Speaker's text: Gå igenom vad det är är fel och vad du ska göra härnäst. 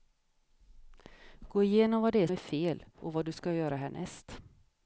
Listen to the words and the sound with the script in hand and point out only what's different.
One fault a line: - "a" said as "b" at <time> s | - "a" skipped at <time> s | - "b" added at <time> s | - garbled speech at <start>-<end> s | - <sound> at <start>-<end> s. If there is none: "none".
none